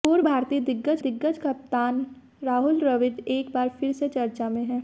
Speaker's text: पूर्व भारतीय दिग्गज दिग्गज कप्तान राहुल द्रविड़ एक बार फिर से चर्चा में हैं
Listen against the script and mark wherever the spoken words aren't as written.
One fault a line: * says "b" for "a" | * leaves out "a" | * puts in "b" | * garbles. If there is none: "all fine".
all fine